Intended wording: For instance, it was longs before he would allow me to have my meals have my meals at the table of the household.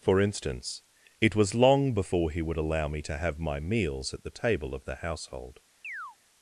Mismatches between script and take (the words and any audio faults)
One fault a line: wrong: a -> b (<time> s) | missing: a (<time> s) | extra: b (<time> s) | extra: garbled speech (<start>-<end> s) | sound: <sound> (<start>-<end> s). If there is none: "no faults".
wrong: longs -> long (1.5 s)
missing: have my meals (4.2 s)
sound: chirp (5.8-6.2 s)